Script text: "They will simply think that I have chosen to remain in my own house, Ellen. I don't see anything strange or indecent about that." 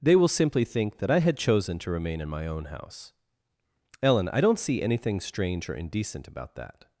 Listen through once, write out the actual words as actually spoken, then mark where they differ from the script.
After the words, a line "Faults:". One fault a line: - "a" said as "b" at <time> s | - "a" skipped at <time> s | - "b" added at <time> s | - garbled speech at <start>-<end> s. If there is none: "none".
"They will simply think that I had chosen to remain in my own house, Ellen. I don't see anything strange or indecent about that."
Faults:
- "have" said as "had" at 1.2 s